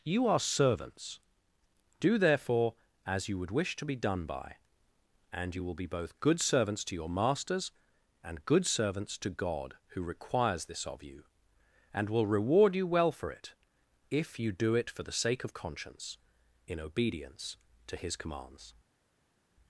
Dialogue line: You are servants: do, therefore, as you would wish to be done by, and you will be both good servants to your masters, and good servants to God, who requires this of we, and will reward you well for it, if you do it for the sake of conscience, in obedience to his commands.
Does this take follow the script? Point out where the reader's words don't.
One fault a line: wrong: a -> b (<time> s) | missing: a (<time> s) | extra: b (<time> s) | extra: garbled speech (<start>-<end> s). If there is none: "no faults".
wrong: we -> you (11.0 s)